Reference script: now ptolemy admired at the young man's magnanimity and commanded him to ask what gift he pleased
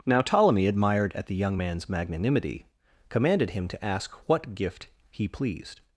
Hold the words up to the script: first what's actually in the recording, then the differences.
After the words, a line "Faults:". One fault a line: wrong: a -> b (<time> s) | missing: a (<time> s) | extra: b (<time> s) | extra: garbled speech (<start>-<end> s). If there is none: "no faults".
now ptolemy admired at the young man's magnanimity commanded him to ask what gift he pleased
Faults:
missing: and (2.7 s)